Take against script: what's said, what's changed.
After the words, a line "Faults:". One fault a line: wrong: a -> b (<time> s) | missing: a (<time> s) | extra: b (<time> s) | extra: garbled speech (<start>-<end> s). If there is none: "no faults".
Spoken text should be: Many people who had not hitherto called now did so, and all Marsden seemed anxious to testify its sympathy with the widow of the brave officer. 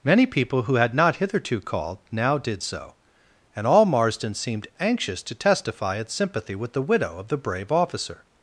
Many people who had not hitherto called now did so, and all Marsden seemed anxious to testify its sympathy with the widow of the brave officer.
Faults:
no faults